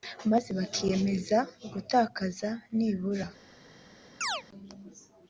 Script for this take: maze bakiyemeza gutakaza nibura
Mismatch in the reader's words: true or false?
false